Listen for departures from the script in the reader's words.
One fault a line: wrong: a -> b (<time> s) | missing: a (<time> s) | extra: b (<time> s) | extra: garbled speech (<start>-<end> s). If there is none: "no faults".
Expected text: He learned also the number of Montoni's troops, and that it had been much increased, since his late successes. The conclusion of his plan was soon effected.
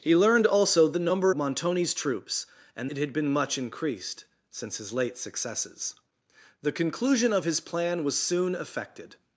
missing: of (1.4 s)
missing: that (2.9 s)